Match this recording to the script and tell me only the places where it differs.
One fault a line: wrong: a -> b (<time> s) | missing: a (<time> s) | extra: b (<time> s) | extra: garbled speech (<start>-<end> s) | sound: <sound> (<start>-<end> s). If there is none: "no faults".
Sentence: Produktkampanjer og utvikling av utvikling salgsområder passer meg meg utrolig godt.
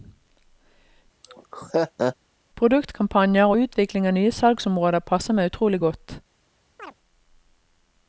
sound: laugh (1.2-2.2 s)
wrong: utvikling -> nye (4.2 s)
missing: meg (5.5 s)
sound: chirp (6.8-6.9 s)